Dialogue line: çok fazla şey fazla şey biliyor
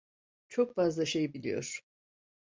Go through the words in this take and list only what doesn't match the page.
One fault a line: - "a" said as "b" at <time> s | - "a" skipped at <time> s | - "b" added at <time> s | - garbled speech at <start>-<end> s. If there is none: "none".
- "fazla şey" skipped at 1.3 s